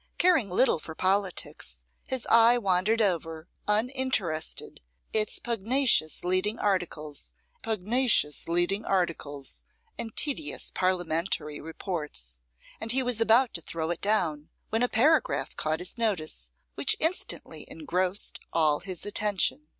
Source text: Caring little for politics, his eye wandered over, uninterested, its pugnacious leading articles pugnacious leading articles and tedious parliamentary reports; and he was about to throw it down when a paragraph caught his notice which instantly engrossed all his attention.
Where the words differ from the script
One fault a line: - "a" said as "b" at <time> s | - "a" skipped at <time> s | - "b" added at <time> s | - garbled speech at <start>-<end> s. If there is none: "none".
none